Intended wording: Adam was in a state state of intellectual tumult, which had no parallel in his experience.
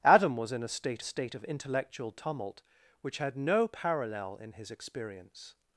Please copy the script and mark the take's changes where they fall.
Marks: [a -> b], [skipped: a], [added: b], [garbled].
Adam was in a state state of intellectual tumult, which had no parallel in his experience.